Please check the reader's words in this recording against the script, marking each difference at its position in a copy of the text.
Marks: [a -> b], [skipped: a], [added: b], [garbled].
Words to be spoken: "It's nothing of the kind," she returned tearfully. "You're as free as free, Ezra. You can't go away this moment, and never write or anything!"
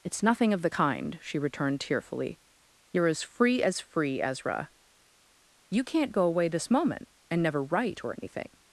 "It's nothing of the kind," she returned tearfully. "You're as free as free, Ezra. You can't go away this moment, and never write or anything!"